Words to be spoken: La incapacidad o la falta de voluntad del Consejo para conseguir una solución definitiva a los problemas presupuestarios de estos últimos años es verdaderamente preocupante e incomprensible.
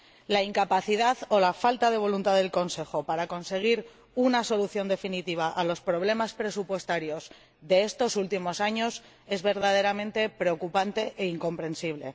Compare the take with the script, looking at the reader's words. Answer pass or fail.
pass